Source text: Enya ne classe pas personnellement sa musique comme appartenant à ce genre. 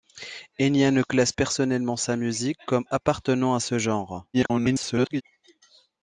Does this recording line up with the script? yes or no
no